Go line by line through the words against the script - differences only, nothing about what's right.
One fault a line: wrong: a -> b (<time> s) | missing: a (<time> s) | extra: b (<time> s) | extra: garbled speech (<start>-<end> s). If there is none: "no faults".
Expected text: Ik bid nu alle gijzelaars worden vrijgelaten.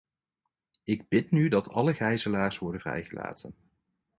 extra: dat (1.5 s)